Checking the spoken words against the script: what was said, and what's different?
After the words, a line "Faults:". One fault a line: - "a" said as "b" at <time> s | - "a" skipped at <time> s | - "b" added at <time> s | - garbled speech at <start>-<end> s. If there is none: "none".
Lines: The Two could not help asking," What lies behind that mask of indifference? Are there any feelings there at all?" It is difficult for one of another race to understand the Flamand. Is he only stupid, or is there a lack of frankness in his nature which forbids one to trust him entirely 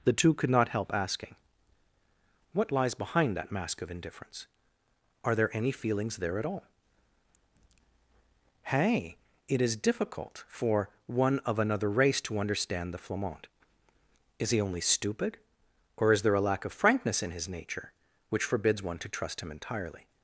The Two could not help asking," What lies behind that mask of indifference? Are there any feelings there at all?" hey It is difficult for one of another race to understand the Flamand. Is he only stupid, or is there a lack of frankness in his nature which forbids one to trust him entirely
Faults:
- "hey" added at 8.6 s